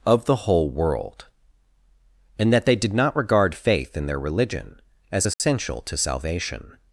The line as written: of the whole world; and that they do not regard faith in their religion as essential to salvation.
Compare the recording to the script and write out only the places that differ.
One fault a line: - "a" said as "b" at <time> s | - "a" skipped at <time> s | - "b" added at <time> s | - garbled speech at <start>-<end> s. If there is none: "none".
- "do" said as "did" at 2.8 s